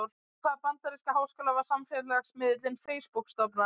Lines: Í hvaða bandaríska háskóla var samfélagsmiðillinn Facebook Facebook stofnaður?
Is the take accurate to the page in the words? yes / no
no